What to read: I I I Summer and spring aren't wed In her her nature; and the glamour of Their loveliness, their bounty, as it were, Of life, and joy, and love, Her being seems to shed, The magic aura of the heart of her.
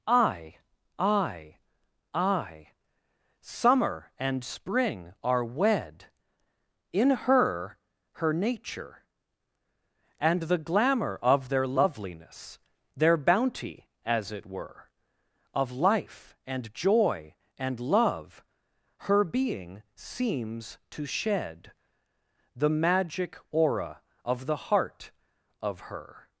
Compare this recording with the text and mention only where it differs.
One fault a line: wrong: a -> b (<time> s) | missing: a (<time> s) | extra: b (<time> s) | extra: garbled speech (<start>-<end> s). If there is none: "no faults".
wrong: aren't -> are (5.2 s)